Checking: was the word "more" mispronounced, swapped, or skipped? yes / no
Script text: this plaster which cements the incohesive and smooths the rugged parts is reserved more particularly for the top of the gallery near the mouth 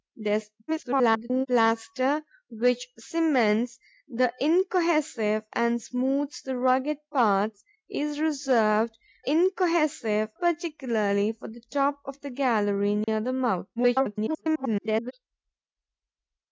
yes